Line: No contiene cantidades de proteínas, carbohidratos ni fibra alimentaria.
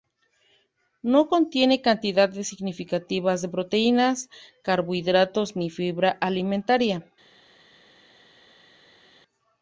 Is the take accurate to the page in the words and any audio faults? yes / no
no